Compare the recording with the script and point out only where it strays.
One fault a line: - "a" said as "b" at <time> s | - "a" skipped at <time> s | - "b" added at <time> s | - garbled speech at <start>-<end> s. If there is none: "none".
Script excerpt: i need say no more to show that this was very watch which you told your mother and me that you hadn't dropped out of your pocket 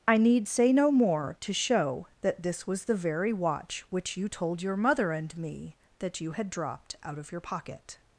- "the" added at 2.9 s
- "hadn't" said as "had" at 6.3 s